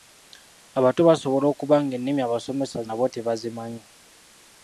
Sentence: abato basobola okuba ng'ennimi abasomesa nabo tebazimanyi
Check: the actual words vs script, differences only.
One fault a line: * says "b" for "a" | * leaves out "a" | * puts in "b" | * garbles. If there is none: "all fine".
all fine